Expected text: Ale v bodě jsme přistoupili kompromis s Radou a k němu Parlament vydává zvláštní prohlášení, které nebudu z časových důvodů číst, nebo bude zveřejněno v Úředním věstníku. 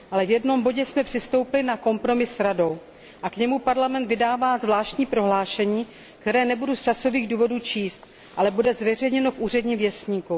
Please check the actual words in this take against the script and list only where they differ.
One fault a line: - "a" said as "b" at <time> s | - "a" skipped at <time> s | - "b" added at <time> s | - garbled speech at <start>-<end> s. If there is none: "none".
- "jednom" added at 0.3 s
- "na" added at 1.6 s
- "nebo" said as "ale" at 8.4 s